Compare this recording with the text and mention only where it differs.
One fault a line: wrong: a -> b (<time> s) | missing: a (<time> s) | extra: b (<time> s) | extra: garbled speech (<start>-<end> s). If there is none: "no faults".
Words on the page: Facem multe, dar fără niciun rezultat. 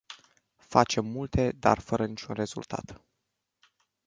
no faults